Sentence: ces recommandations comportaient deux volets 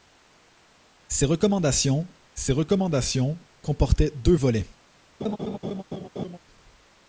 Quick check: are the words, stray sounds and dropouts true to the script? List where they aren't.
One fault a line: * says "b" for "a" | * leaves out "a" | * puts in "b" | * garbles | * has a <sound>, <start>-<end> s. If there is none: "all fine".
* puts in "ces recommandations"
* has a laugh, 5.2-6.4 s